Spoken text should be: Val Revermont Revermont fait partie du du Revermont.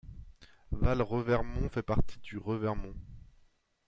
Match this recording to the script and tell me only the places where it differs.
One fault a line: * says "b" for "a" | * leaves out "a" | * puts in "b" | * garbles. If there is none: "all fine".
* leaves out "Revermont"
* leaves out "du"